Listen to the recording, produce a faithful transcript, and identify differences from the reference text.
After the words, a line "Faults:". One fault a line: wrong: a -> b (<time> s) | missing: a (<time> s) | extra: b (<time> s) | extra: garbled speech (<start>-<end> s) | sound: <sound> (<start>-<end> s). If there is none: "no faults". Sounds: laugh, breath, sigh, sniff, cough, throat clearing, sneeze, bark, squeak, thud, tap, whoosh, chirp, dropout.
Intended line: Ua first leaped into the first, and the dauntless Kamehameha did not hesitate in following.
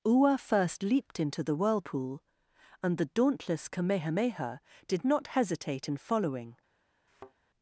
Ua first leaped into the whirlpool, and the dauntless Kamehameha did not hesitate in following.
Faults:
wrong: first -> whirlpool (1.6 s)
sound: thud (7.1-7.3 s)